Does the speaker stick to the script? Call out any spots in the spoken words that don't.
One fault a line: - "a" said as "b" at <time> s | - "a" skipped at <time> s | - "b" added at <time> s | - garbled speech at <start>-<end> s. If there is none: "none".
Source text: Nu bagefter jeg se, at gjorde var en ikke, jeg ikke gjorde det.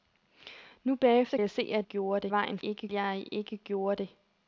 none